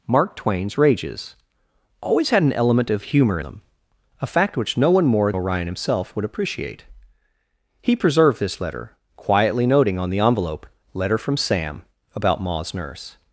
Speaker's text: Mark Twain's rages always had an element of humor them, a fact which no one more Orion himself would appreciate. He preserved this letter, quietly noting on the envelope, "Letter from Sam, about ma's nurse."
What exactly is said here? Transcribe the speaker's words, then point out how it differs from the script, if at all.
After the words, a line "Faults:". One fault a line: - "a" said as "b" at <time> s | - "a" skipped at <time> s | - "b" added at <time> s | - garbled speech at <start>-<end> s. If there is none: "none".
Mark Twain's rages always had an element of humor them, a fact which no one more Orion himself would appreciate. He preserved this letter, quietly noting on the envelope, "Letter from Sam, about ma's nurse."
Faults:
none